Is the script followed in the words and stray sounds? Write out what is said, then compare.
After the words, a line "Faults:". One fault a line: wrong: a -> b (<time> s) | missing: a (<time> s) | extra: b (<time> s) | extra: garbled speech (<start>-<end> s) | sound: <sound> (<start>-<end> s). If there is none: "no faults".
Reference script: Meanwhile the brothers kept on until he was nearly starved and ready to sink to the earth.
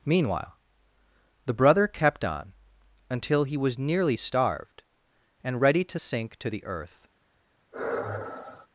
Meanwhile the brother kept on until he was nearly starved and ready to sink to the earth.
Faults:
wrong: brothers -> brother (1.5 s)
sound: sigh (7.7-8.7 s)